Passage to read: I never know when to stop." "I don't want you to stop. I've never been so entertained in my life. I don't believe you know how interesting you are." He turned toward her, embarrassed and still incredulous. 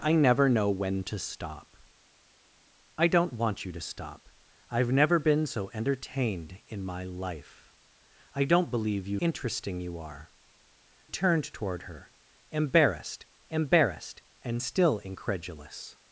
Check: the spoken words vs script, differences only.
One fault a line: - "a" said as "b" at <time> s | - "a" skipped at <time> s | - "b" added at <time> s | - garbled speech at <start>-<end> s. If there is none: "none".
- "know how" skipped at 9.2 s
- "He" skipped at 10.3 s
- "embarrassed" added at 13.5 s